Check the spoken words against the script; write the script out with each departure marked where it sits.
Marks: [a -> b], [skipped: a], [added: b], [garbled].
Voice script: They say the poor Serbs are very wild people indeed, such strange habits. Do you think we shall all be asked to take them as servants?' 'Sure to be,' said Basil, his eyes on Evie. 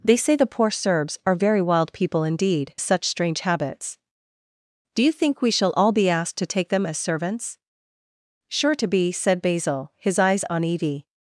They say the poor Serbs are very wild people indeed, such strange habits. Do you think we shall all be asked to take them as servants?' 'Sure to be,' said Basil, his eyes on Evie.